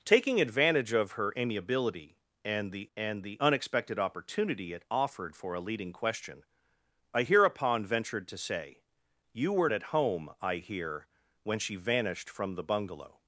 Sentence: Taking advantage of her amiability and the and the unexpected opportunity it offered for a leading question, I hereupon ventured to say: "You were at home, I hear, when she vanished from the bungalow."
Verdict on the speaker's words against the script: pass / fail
pass